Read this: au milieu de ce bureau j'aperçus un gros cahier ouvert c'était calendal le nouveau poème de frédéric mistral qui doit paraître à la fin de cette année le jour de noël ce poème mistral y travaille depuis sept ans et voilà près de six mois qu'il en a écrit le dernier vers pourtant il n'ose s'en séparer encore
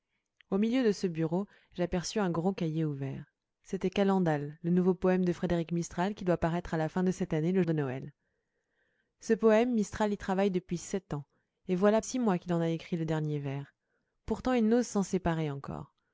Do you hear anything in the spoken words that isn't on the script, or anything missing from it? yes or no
yes